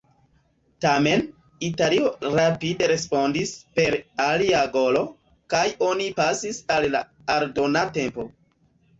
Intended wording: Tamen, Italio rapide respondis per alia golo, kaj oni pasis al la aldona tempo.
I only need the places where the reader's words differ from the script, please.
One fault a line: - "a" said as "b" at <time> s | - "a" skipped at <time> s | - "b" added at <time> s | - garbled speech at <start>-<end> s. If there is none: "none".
none